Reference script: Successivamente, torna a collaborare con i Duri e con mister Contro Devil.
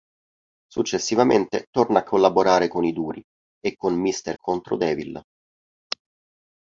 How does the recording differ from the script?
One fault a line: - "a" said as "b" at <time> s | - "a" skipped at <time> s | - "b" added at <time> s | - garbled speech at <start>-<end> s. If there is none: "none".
none